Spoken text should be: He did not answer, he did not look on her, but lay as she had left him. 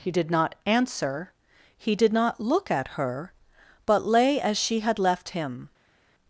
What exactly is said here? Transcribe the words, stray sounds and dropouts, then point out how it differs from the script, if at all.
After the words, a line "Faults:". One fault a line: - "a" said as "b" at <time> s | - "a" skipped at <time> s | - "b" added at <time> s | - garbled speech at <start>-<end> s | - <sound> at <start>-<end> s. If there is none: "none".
He did not answer, he did not look at her, but lay as she had left him.
Faults:
- "on" said as "at" at 2.7 s